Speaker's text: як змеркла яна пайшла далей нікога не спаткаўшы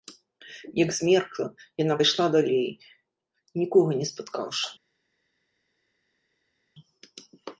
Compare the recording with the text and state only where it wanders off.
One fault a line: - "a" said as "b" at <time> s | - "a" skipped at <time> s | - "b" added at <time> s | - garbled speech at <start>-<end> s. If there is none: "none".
none